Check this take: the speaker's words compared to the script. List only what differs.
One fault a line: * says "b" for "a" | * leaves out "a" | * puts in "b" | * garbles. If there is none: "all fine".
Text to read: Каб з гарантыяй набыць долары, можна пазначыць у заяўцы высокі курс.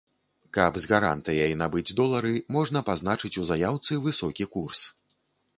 all fine